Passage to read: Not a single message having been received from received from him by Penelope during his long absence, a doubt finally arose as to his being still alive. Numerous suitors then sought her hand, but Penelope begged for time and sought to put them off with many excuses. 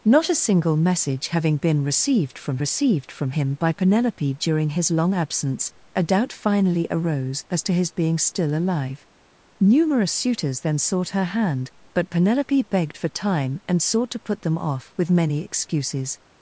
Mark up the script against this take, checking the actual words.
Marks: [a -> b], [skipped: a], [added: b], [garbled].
Not a single message having been received from received from him by Penelope during his long absence, a doubt finally arose as to his being still alive. Numerous suitors then sought her hand, but Penelope begged for time and sought to put them off with many excuses.